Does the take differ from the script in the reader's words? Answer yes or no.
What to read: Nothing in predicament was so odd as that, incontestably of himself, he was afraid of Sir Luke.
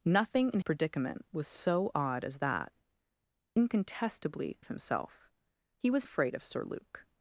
no